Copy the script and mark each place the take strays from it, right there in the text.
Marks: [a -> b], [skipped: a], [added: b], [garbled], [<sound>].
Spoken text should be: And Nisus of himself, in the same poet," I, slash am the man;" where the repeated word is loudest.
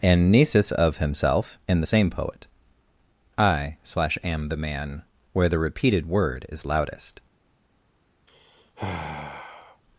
And Nisus of himself, in the same poet," I, slash am the man;" where the repeated word is loudest. [sigh]